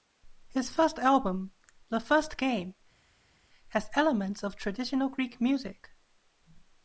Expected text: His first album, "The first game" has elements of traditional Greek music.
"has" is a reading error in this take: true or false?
false